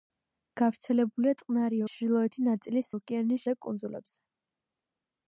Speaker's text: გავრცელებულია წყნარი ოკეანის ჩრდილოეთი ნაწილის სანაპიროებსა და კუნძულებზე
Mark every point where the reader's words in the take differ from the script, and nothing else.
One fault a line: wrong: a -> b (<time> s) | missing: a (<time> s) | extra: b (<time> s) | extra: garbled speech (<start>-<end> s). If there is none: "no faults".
missing: ოკეანის (1.8 s)
wrong: სანაპიროებსა -> ოკეანის (2.9 s)